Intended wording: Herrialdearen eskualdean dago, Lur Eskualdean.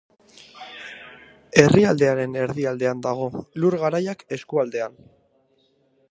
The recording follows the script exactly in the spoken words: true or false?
false